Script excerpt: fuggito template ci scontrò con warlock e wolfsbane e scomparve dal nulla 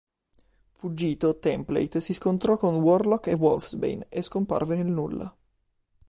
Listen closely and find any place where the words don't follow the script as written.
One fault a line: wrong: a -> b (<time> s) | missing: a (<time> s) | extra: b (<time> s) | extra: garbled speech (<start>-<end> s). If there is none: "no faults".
wrong: ci -> si (2.0 s)
wrong: dal -> nel (4.8 s)